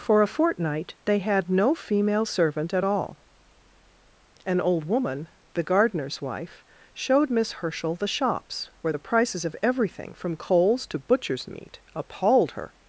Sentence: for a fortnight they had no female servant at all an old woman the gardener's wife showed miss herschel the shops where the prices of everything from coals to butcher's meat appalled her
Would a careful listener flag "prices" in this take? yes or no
no